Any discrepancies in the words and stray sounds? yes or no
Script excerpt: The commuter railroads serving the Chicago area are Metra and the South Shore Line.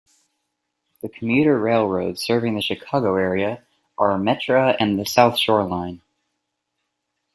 no